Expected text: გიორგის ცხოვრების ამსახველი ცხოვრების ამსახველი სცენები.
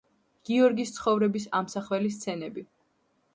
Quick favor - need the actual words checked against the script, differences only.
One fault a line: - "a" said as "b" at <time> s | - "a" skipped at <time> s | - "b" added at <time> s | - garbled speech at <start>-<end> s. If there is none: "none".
- "ცხოვრების ამსახველი" skipped at 2.1 s